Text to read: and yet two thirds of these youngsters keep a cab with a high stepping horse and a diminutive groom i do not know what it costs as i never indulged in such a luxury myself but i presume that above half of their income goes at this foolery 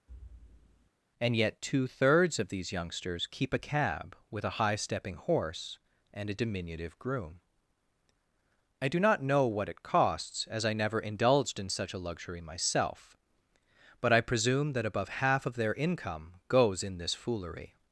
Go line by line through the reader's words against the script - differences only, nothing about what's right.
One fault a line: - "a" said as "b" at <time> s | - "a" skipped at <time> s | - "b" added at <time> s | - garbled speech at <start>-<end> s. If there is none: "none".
- "at" said as "in" at 16.8 s